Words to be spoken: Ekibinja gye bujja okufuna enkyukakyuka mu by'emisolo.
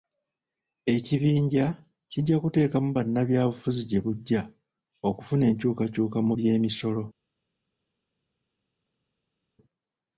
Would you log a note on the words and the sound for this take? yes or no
yes